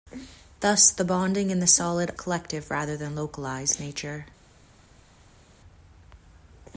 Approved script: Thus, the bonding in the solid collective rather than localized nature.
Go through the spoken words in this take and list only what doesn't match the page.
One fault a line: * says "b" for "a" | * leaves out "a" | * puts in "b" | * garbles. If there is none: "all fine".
all fine